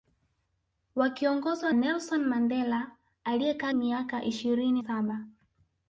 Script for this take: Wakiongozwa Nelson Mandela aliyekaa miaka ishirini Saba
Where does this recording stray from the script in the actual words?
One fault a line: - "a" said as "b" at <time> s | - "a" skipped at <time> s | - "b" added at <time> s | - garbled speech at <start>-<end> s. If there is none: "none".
none